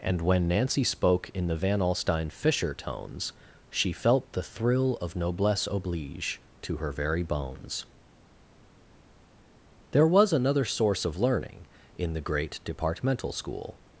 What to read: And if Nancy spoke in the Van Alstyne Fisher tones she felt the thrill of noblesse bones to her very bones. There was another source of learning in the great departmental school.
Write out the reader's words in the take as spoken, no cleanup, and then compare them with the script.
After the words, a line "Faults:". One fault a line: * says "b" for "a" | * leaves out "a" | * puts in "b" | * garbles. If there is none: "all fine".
And when Nancy spoke in the Van Alstyne Fisher tones she felt the thrill of noblesse oblige to her very bones. There was another source of learning in the great departmental school.
Faults:
* says "when" for "if"
* says "oblige" for "bones"